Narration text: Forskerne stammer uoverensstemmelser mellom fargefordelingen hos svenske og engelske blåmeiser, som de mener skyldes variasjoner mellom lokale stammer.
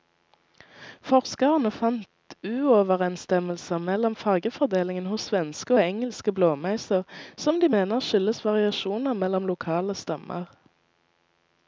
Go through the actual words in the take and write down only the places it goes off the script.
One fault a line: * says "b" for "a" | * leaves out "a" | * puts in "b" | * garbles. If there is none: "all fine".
* says "fant" for "stammer"